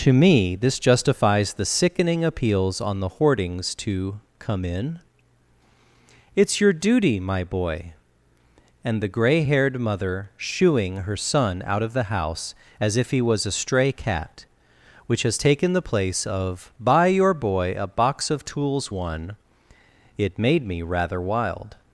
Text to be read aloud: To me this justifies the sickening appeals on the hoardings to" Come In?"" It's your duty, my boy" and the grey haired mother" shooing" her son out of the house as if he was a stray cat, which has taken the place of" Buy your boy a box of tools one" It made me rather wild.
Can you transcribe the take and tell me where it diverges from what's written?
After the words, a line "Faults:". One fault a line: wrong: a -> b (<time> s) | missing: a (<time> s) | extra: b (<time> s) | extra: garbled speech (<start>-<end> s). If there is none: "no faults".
To me this justifies the sickening appeals on the hoardings to" Come In?"" It's your duty, my boy" and the grey haired mother" shooing" her son out of the house as if he was a stray cat, which has taken the place of" Buy your boy a box of tools one" It made me rather wild.
Faults:
no faults